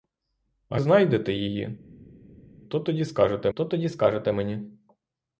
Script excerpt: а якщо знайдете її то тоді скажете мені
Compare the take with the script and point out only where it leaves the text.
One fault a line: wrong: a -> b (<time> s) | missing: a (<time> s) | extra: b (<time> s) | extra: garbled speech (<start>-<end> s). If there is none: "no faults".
missing: якщо (0.8 s)
extra: то тоді скажете (3.6 s)